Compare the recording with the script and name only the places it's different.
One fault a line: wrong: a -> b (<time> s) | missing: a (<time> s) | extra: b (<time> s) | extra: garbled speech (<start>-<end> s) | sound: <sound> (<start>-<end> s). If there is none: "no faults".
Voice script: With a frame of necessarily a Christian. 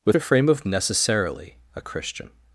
no faults